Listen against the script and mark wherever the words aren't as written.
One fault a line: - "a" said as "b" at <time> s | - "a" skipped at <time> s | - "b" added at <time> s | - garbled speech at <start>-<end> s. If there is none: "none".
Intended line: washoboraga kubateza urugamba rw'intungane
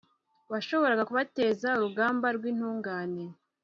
none